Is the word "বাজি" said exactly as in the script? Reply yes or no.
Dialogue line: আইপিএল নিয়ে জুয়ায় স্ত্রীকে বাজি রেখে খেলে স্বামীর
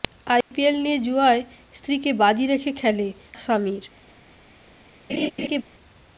yes